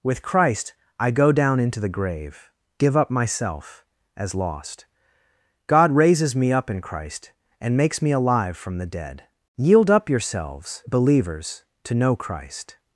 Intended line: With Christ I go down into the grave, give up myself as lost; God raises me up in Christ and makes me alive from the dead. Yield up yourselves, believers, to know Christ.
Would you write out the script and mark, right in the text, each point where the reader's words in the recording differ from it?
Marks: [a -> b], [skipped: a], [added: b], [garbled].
With Christ I go down into the grave, give up myself as lost; God raises me up in Christ and makes me alive from the dead. Yield up yourselves, believers, to know Christ.